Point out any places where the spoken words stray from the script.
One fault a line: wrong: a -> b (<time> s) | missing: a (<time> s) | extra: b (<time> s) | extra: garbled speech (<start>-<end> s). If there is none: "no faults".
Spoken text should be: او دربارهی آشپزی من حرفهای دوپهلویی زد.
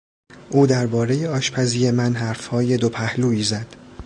no faults